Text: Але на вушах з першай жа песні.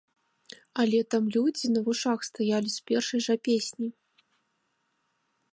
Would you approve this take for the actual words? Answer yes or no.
no